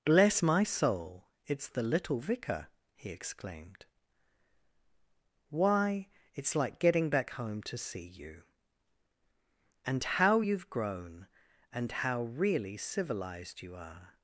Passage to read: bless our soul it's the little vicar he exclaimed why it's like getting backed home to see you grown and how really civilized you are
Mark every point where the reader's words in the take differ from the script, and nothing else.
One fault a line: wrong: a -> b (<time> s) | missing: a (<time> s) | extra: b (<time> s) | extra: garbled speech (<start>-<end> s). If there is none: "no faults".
wrong: our -> my (0.4 s)
wrong: backed -> back (7.1 s)
extra: and how you've (9.9 s)